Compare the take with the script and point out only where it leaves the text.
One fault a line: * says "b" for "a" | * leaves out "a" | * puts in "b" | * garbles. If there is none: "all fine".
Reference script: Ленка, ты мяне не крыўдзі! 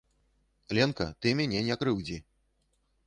all fine